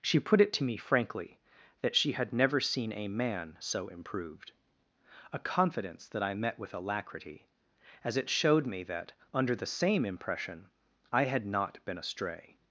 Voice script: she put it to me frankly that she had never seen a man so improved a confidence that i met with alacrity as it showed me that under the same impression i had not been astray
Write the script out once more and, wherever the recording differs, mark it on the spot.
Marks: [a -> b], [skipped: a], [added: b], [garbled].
she put it to me frankly that she had never seen a man so improved a confidence that i met with alacrity as it showed me that under the same impression i had not been astray